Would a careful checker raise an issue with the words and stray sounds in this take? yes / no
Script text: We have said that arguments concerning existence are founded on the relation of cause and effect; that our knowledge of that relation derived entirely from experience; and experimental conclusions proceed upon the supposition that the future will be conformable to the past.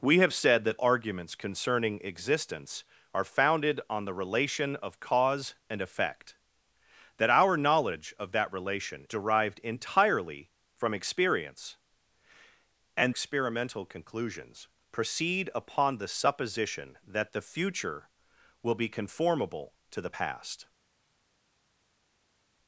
no